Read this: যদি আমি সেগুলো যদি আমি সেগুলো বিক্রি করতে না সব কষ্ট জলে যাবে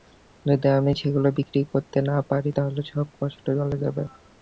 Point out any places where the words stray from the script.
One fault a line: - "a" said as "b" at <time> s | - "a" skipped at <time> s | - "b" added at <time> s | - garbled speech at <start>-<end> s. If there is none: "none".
- "যদি আমি সেগুলো" skipped at 1.3 s
- "পারি তাহলে" added at 2.3 s